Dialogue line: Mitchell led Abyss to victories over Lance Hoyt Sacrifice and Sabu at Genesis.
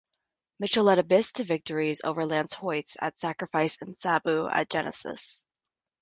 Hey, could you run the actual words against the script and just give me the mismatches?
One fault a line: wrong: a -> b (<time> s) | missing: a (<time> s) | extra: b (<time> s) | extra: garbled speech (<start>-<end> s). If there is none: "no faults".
extra: at (3.0 s)